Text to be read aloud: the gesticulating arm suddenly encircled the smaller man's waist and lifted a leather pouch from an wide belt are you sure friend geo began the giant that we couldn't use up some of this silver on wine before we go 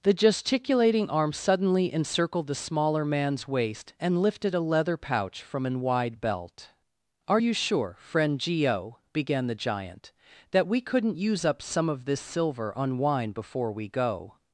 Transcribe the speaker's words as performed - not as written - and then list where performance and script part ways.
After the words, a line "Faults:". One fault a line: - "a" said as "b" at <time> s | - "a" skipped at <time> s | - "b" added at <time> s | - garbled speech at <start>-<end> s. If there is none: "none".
the gesticulating arm suddenly encircled the smaller man's waist and lifted a leather pouch from an wide belt are you sure friend geo began the giant that we couldn't use up some of this silver on wine before we go
Faults:
none